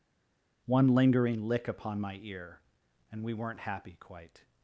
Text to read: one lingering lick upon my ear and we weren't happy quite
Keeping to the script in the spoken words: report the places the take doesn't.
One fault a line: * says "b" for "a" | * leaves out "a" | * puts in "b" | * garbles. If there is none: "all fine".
all fine